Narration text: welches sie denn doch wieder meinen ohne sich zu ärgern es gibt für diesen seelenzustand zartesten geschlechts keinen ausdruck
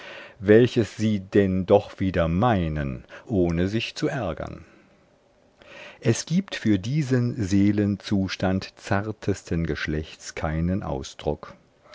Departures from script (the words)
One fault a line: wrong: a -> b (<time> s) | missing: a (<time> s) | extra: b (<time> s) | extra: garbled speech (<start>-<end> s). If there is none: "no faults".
no faults